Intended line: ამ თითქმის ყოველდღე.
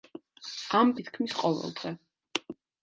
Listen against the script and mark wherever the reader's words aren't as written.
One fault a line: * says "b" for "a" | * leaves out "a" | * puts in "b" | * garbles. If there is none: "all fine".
all fine